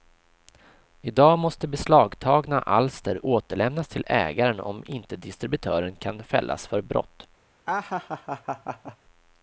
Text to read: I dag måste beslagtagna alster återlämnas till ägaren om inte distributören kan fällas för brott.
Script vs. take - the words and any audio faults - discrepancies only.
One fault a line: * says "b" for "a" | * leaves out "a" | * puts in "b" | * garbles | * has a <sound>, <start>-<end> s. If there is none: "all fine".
* has a laugh, 7.7-9.0 s